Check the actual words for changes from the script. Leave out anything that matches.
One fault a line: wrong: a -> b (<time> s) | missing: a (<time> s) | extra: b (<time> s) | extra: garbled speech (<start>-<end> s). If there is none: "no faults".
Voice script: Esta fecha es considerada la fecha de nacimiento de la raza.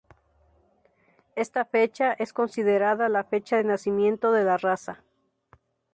no faults